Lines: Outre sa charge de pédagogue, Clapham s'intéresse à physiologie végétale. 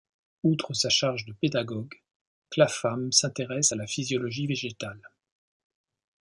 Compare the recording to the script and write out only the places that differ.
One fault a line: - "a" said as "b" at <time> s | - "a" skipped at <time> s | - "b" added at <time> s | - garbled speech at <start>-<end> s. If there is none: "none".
- "la" added at 3.8 s